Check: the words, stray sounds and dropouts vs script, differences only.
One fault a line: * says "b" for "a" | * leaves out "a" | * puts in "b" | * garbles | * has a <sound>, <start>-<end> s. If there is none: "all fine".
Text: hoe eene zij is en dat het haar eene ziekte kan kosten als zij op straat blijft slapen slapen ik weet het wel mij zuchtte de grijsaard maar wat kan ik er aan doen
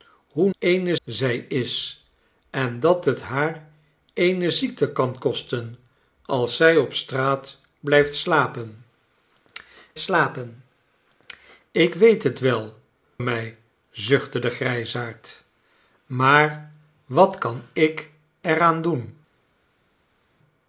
all fine